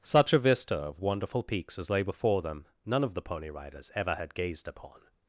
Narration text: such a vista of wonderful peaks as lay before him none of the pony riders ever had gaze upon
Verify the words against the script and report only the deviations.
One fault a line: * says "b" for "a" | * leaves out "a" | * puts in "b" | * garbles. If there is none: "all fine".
* says "them" for "him"
* says "gazed" for "gaze"